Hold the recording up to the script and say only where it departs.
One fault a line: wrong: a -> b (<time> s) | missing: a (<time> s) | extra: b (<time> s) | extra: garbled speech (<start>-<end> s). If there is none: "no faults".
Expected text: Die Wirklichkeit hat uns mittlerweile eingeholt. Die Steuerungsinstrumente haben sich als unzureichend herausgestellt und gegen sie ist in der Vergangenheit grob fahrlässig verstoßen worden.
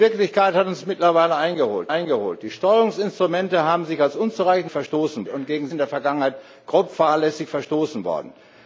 extra: eingeholt (1.9 s)
wrong: herausgestellt -> verstoßen (4.7 s)
missing: sie ist (5.7 s)